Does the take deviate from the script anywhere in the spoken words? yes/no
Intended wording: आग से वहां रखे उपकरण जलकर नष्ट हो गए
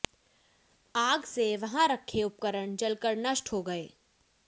no